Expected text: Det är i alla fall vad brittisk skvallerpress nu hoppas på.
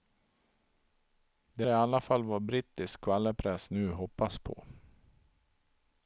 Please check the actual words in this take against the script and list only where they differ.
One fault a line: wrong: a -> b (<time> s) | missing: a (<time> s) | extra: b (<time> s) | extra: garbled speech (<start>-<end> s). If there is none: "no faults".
missing: är (1.7 s)